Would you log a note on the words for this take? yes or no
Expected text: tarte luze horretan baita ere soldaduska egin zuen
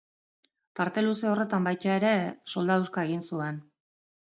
no